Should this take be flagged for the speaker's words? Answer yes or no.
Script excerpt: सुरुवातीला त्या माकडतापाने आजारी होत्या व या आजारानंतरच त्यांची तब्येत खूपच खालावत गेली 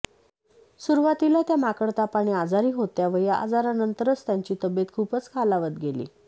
no